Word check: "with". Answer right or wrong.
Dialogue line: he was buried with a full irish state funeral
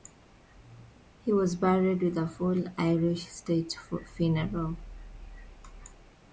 right